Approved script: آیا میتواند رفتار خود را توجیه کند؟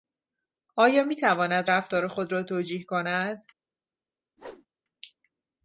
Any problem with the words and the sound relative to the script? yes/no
yes